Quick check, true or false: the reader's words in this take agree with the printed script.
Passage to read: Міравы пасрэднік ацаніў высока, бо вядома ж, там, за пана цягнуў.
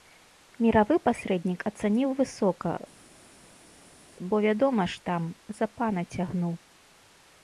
true